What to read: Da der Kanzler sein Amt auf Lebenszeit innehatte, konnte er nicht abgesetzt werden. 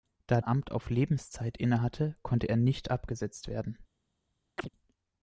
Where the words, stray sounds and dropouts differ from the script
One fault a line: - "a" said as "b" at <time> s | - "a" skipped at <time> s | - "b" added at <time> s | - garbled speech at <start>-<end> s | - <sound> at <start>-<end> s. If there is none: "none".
- "der Kanzler sein" skipped at 0.4 s
- chirp at 4.6-4.7 s